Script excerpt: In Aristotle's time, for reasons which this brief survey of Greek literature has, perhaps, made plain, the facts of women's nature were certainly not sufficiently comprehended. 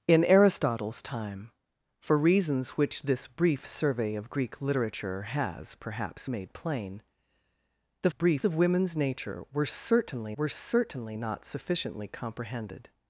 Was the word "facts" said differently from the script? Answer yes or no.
yes